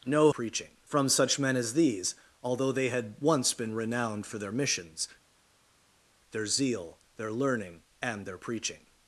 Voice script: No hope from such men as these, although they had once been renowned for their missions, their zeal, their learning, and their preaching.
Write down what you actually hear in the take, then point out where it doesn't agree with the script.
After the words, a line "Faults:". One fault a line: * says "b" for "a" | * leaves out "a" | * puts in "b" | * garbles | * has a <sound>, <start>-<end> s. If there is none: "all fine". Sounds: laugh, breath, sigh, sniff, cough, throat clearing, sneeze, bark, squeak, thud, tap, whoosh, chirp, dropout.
No preaching from such men as these, although they had once been renowned for their missions, their zeal, their learning, and their preaching.
Faults:
* says "preaching" for "hope"